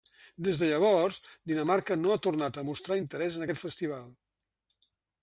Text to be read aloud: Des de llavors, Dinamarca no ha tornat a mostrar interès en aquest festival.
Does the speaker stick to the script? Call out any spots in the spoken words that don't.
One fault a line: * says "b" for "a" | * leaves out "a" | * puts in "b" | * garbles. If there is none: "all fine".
all fine